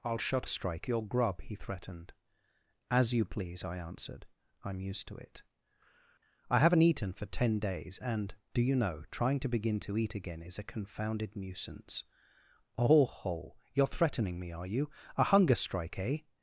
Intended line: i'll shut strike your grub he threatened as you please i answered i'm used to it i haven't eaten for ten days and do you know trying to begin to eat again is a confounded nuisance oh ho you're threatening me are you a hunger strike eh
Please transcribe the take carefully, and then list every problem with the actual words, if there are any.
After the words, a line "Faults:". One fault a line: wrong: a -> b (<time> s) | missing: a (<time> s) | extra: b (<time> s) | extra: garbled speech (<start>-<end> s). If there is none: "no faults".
i'll shut strike your grub he threatened as you please i answered i'm used to it i haven't eaten for ten days and do you know trying to begin to eat again is a confounded nuisance oh ho you're threatening me are you a hunger strike eh
Faults:
no faults